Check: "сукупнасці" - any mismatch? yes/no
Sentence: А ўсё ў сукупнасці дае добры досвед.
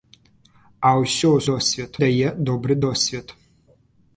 yes